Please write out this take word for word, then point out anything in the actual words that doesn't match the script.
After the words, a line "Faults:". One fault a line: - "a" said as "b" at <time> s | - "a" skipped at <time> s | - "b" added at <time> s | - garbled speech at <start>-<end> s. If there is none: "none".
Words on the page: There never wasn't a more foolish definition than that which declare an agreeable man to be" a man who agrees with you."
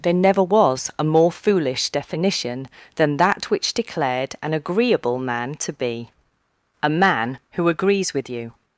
There never was a more foolish definition than that which declared an agreeable man to be" a man who agrees with you."
Faults:
- "wasn't" said as "was" at 0.4 s
- "declare" said as "declared" at 3.7 s